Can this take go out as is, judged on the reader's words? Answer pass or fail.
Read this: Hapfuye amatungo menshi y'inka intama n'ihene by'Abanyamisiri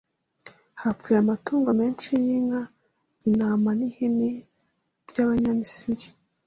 pass